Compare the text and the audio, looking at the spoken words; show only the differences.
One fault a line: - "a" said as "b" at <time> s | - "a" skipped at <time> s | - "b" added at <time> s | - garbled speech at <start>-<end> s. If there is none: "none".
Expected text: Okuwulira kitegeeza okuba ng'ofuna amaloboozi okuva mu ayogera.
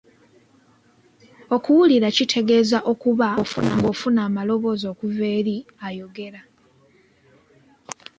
- "mu" said as "eri" at 5.4 s